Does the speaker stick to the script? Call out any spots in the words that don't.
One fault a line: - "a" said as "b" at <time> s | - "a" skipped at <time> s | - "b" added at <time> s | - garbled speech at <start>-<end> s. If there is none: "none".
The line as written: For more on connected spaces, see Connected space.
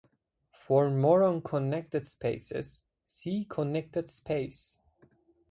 none